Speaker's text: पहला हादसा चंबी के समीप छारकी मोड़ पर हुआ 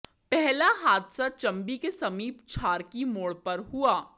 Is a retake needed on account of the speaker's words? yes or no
no